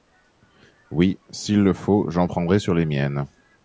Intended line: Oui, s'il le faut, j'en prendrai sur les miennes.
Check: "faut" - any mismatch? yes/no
no